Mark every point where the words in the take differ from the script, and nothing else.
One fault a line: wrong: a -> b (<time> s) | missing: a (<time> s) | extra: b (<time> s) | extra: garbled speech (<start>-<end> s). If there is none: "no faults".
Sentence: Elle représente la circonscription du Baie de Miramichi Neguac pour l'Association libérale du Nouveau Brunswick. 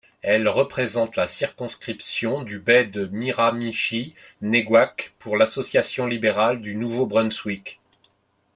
no faults